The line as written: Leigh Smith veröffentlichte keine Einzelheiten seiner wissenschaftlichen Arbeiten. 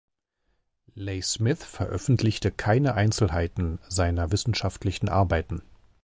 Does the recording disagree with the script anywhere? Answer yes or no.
no